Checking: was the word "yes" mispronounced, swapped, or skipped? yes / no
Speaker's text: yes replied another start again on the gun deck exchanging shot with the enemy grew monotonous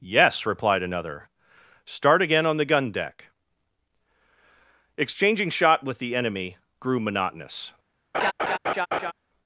no